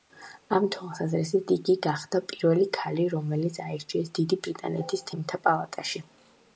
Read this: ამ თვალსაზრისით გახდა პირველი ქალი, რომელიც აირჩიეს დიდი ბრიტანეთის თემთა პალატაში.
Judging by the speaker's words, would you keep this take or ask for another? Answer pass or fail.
fail